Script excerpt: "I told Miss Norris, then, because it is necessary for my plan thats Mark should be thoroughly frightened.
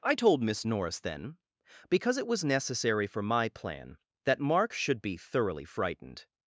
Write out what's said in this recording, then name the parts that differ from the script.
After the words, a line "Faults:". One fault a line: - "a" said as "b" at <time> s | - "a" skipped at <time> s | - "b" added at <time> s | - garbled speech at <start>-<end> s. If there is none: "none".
"I told Miss Norris, then, because it was necessary for my plan that Mark should be thoroughly frightened.
Faults:
- "is" said as "was" at 2.3 s
- "thats" said as "that" at 4.2 s